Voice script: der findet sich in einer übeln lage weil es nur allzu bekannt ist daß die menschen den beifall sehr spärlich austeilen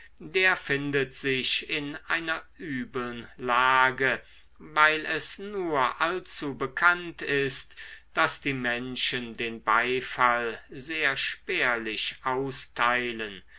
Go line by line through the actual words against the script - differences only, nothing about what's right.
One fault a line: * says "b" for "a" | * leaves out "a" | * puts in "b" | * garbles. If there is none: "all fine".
all fine